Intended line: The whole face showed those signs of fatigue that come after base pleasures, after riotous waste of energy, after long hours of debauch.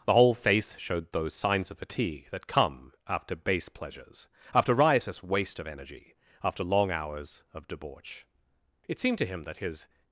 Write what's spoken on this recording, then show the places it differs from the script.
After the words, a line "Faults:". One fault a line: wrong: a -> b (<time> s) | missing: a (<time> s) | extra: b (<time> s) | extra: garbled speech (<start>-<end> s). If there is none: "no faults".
The whole face showed those signs of fatigue that come after base pleasures, after riotous waste of energy, after long hours of debauch. It seemed to him that his
Faults:
extra: It seemed to him that his (8.9 s)